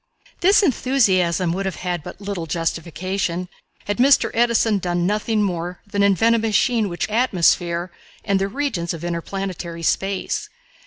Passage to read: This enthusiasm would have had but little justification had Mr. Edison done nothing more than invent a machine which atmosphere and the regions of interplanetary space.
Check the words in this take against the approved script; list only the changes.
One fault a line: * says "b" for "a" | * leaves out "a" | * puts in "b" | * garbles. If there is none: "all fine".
all fine